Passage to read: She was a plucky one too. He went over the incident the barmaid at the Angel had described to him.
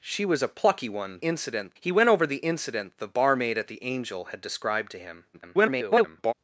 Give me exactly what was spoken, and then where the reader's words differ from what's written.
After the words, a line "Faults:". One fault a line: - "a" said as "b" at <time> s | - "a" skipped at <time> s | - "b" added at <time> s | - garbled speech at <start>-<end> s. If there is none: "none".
She was a plucky one incident. He went over the incident the barmaid at the Angel had described to him. [garbled]
Faults:
- "too" said as "incident" at 1.2 s
- garbled speech at 5.3-6.3 s